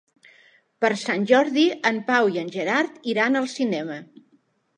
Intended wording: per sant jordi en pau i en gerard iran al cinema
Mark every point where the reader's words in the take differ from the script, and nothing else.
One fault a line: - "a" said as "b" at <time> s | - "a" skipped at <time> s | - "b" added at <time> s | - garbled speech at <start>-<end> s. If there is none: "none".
none